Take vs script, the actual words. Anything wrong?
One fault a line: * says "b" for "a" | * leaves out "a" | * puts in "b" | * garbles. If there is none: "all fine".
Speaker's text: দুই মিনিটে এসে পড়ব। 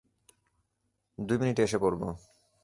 all fine